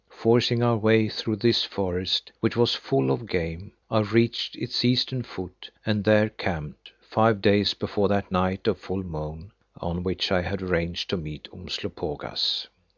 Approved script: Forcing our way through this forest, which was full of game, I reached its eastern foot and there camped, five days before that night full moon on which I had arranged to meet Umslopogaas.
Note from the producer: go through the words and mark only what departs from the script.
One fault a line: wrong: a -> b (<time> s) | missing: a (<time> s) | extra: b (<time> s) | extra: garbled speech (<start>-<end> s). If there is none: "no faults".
extra: of (8.7 s)